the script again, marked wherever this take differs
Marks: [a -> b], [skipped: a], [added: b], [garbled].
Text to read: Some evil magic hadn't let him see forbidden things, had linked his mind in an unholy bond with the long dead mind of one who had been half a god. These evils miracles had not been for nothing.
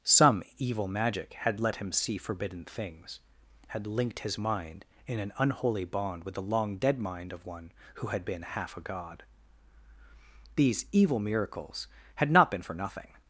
Some evil magic [hadn't -> had] let him see forbidden things, had linked his mind in an unholy bond with the long dead mind of one who had been half a god. These [evils -> evil] miracles had not been for nothing.